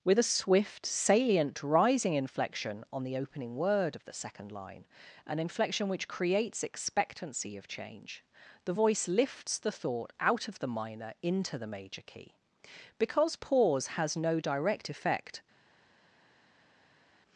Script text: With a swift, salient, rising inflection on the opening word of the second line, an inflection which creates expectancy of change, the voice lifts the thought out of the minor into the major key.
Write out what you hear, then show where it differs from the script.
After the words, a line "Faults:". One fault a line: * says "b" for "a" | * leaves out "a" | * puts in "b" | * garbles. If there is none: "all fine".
With a swift, salient, rising inflection on the opening word of the second line, an inflection which creates expectancy of change, the voice lifts the thought out of the minor into the major key. Because pause has no direct effect
Faults:
* puts in "Because pause has no direct effect"